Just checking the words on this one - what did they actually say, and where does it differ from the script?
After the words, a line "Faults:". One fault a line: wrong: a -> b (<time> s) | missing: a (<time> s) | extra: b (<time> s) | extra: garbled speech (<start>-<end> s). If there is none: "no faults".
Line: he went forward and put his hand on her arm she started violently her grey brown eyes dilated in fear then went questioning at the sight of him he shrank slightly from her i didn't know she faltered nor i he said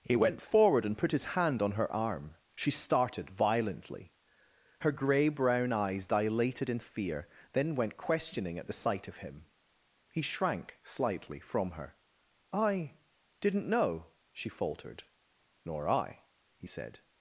he went forward and put his hand on her arm she started violently her grey brown eyes dilated in fear then went questioning at the sight of him he shrank slightly from her i didn't know she faltered nor i he said
Faults:
no faults